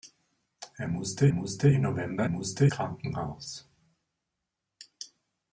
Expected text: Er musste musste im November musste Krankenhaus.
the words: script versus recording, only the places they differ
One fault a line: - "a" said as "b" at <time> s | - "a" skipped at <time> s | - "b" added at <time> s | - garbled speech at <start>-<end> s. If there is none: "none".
none